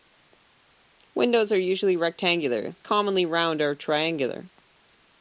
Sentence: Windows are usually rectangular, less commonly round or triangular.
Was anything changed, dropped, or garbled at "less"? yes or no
yes